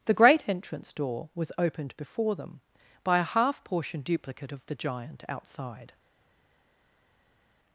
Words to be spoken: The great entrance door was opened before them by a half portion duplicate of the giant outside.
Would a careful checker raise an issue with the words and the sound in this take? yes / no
no